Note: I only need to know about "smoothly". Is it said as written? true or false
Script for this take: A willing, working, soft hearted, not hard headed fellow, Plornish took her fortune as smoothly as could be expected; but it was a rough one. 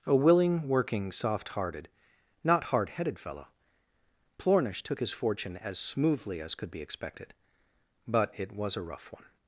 true